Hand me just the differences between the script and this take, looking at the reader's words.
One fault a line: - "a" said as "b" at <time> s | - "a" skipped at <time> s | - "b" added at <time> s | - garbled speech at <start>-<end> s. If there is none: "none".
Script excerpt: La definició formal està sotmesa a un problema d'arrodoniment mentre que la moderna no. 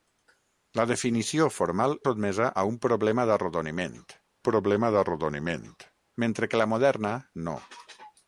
- "està" skipped at 1.9 s
- "problema d'arrodoniment" added at 4.5 s